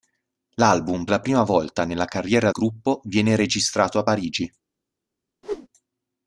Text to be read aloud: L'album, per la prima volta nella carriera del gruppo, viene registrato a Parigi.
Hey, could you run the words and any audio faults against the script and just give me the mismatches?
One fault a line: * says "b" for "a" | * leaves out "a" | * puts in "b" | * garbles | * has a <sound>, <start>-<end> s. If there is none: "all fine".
* leaves out "per"
* leaves out "del"
* has a whoosh, 5.4-5.7 s